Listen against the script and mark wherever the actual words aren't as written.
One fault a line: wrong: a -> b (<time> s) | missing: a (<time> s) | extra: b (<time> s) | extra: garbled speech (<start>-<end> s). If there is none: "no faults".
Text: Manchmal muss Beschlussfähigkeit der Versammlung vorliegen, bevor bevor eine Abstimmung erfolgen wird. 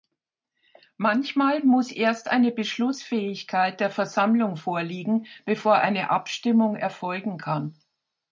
extra: erst eine (1.9 s)
missing: bevor (5.8 s)
wrong: wird -> kann (7.4 s)